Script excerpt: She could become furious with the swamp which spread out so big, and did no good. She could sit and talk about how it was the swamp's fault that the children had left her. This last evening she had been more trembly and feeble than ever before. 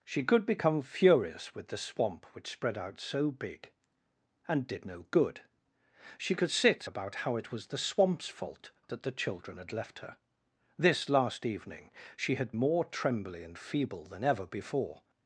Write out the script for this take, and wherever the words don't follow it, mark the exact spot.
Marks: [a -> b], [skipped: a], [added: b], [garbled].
She could become furious with the swamp which spread out so big, and did no good. She could sit [skipped: and talk] about how it was the swamp's fault that the children had left her. This last evening she had [skipped: been] more trembly and feeble than ever before.